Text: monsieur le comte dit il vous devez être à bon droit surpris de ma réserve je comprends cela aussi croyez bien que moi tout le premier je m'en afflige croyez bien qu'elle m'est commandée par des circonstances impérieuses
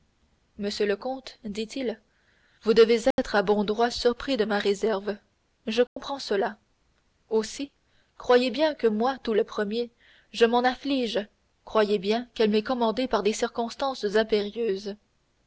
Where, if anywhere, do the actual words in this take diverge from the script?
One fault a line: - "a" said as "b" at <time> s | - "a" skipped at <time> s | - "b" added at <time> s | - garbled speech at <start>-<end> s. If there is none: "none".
none